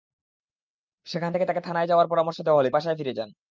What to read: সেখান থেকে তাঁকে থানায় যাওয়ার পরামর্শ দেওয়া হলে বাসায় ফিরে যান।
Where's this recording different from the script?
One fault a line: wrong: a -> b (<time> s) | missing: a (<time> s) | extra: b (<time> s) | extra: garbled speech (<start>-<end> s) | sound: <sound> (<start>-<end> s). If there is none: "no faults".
no faults